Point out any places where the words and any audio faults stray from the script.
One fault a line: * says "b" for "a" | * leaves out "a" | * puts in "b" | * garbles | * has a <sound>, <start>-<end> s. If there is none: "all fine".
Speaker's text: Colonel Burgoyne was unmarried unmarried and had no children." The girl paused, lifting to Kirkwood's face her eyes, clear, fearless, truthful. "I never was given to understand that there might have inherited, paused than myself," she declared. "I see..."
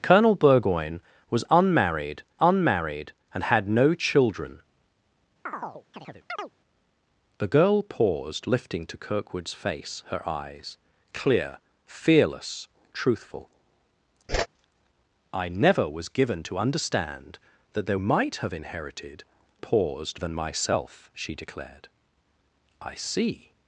* has a chirp, 5.5-6.5 s
* has a whoosh, 14.3-14.5 s